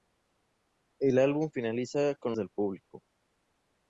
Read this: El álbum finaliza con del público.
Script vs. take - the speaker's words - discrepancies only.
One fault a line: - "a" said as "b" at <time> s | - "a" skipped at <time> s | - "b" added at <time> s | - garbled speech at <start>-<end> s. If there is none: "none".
none